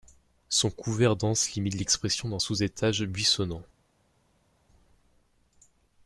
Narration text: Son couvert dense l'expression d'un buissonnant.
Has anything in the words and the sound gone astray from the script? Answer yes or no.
yes